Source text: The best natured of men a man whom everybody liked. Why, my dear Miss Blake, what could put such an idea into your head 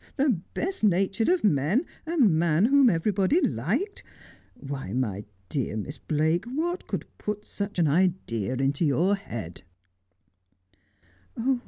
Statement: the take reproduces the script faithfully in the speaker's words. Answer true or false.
true